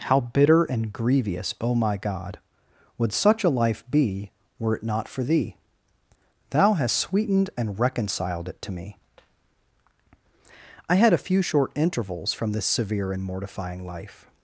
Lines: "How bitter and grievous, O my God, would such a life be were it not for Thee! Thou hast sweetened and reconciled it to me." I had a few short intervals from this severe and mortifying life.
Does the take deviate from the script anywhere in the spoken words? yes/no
no